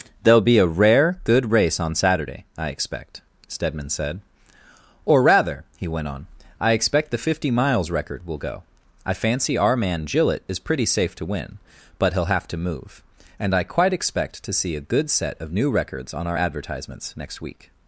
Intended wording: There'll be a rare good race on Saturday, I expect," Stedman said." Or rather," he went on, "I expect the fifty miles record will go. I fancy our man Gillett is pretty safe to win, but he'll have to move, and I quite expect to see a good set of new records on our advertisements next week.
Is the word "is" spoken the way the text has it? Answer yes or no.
yes